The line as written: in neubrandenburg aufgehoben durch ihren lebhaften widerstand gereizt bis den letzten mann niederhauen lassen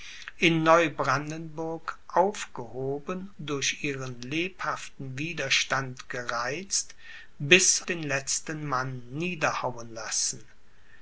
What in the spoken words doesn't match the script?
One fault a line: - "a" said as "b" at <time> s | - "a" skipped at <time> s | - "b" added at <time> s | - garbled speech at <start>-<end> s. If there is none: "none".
none